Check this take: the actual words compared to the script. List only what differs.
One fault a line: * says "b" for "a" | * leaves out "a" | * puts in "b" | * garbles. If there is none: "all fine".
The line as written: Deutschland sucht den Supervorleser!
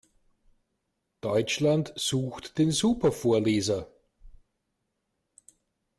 all fine